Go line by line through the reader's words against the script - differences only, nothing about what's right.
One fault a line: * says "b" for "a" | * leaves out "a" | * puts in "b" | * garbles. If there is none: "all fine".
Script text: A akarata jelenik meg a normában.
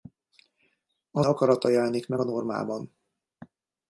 all fine